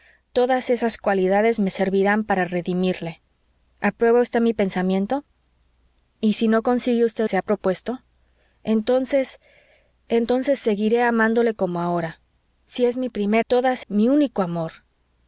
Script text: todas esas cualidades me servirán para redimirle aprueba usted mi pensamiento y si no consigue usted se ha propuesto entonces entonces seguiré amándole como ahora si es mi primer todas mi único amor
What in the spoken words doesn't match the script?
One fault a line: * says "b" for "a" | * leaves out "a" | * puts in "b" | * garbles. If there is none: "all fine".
all fine